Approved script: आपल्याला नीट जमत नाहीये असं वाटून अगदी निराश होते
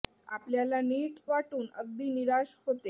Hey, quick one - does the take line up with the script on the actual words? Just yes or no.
no